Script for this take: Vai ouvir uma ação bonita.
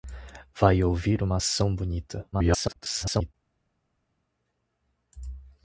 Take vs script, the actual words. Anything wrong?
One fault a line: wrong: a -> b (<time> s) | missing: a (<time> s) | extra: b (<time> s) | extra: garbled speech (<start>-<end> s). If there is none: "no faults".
extra: garbled speech (2.3-3.3 s)